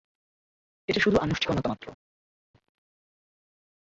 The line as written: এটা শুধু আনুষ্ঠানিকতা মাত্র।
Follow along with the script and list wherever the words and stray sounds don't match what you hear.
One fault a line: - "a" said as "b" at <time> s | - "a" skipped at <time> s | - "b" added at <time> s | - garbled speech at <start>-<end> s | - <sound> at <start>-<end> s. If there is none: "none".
none